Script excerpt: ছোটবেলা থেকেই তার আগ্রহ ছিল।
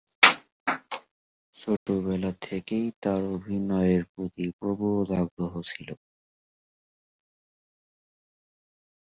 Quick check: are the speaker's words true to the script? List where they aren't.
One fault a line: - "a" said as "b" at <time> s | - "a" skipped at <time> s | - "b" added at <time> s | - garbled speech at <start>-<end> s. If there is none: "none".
- "অভিনয়ের প্রতি প্রবল" added at 3.4 s